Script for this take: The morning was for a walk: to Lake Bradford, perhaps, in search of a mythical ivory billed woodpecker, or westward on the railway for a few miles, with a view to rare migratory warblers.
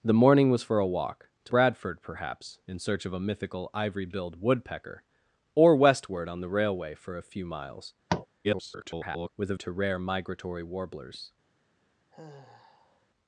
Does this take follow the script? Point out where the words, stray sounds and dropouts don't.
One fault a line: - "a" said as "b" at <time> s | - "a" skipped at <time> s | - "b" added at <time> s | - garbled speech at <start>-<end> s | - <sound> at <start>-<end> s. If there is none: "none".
- "Lake" skipped at 1.5 s
- tap at 8.1-8.3 s
- garbled speech at 8.4-9.3 s
- "view" skipped at 9.5 s
- sigh at 12.1-13.1 s